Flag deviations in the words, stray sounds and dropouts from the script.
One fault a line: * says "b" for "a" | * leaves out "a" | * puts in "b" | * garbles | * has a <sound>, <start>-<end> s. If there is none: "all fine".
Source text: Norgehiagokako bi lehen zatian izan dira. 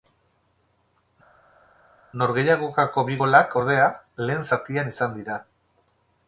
* puts in "golak ordea"